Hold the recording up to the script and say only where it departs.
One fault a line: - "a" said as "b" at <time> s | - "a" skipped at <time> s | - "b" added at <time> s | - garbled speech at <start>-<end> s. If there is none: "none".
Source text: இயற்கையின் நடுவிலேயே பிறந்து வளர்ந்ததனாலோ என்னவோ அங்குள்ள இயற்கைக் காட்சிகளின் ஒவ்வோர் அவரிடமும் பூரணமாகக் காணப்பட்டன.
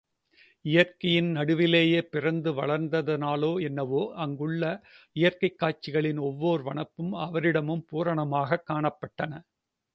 - "வனப்பும்" added at 6.6 s